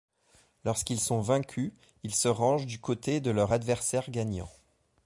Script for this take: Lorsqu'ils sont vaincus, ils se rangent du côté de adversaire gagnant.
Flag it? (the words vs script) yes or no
yes